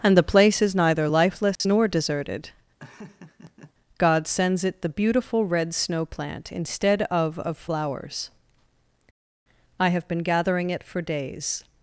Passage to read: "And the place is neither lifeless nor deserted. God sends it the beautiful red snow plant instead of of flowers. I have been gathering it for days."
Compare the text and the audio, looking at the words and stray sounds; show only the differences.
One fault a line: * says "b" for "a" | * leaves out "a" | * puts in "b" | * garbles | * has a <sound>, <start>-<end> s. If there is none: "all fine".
* has a dropout, 1.6-1.6 s
* has a laugh, 2.8-3.7 s